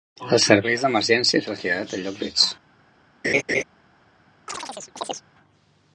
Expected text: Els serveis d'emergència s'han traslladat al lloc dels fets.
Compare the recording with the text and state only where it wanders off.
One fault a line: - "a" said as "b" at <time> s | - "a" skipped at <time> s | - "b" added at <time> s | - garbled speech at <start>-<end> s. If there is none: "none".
- "s'han" skipped at 1.4 s
- "dels" skipped at 2.2 s